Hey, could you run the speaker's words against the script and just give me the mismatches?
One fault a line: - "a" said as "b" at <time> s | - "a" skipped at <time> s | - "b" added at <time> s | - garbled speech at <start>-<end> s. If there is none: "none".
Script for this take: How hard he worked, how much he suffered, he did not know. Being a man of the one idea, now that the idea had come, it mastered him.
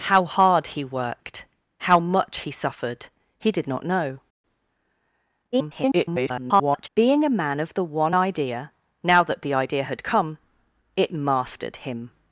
- garbled speech at 5.5-6.9 s